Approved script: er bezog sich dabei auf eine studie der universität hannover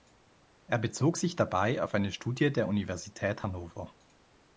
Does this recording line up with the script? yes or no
yes